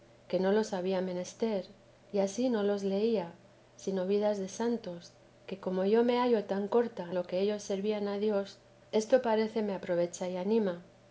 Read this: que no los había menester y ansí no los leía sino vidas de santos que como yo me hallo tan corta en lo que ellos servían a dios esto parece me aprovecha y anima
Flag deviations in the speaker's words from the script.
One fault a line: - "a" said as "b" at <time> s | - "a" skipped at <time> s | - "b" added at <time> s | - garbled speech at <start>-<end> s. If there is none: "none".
- "en" skipped at 7.1 s